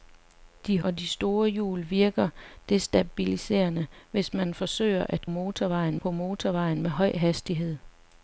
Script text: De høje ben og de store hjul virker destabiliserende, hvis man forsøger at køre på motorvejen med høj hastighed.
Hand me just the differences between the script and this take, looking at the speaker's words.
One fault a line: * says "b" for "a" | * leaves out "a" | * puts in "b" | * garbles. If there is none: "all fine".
* leaves out "høje ben"
* says "motorvejen" for "køre"